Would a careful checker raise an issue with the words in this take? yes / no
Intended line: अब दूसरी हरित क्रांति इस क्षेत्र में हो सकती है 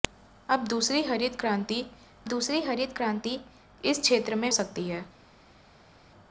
yes